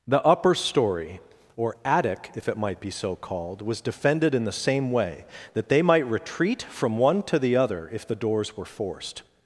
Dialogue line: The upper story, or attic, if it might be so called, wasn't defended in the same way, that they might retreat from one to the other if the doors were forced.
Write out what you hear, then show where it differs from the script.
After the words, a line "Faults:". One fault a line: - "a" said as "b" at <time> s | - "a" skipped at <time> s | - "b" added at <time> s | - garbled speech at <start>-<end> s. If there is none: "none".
The upper story, or attic, if it might be so called, was defended in the same way, that they might retreat from one to the other if the doors were forced.
Faults:
- "wasn't" said as "was" at 3.6 s